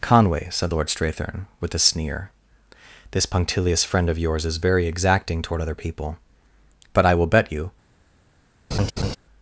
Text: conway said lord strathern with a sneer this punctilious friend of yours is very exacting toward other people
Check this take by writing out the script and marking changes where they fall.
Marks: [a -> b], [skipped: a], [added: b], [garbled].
conway said lord strathern with a sneer this punctilious friend of yours is very exacting toward other people [added: but i will bet you]